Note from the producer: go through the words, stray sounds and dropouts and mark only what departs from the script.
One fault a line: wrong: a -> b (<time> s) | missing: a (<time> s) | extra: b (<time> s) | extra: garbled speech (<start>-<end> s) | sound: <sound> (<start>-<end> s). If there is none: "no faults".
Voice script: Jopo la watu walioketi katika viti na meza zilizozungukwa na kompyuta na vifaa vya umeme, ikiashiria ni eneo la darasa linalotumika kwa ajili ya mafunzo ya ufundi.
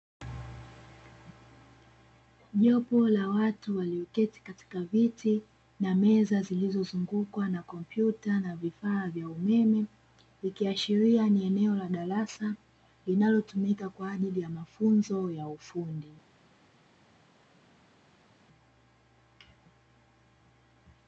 no faults